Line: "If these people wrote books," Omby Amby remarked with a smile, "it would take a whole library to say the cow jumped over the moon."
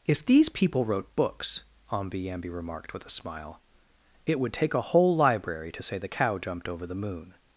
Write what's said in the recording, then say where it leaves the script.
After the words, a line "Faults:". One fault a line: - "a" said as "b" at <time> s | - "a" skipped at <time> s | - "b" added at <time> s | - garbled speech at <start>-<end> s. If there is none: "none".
"If these people wrote books," Omby Amby remarked with a smile, "it would take a whole library to say the cow jumped over the moon."
Faults:
none